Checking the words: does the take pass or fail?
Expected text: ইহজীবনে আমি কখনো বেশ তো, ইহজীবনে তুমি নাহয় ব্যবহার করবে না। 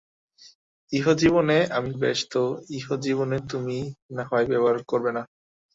fail